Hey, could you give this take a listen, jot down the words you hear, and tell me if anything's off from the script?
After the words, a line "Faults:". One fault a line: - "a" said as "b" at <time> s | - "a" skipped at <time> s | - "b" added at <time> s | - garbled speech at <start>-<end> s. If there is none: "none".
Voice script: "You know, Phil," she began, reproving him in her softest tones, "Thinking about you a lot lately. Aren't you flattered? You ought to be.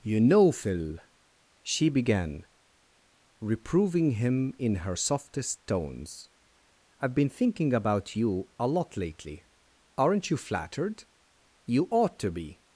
"You know, Phil," she began, reproving him in her softest tones, "I've been thinking about you a lot lately. Aren't you flattered? You ought to be.
Faults:
- "I've been" added at 7.0 s